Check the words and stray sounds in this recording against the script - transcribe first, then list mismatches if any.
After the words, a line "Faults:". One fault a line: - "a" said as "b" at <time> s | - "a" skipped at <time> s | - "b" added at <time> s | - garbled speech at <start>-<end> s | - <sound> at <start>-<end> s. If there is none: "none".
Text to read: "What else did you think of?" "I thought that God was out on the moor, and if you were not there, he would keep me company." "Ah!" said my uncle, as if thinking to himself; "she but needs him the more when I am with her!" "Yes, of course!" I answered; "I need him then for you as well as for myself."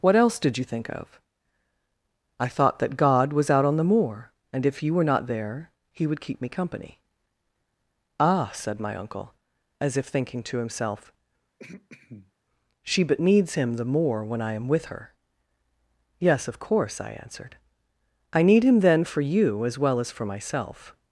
"What else did you think of?" "I thought that God was out on the moor, and if you were not there, he would keep me company." "Ah!" said my uncle, as if thinking to himself; "she but needs him the more when I am with her!" "Yes, of course!" I answered; "I need him then for you as well as for myself."
Faults:
- throat clearing at 11.6-12.3 s